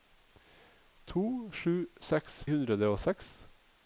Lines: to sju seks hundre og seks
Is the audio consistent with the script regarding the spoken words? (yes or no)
yes